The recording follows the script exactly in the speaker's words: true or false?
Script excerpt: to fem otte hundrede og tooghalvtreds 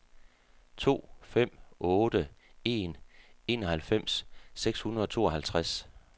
false